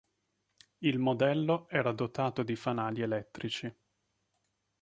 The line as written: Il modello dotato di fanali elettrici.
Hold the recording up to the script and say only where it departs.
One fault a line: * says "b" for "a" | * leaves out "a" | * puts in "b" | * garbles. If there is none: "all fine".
* puts in "era"